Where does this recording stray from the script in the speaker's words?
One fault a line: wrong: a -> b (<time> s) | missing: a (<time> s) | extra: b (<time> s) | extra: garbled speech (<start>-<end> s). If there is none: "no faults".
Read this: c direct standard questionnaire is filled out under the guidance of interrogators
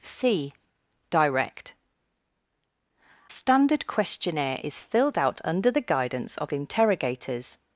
no faults